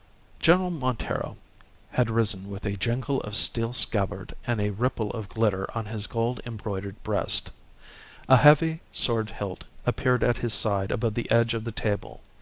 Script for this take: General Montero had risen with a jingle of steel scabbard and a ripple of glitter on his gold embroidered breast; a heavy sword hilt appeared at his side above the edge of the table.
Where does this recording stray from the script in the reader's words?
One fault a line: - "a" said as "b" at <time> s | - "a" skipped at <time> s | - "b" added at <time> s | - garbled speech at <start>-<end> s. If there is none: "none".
none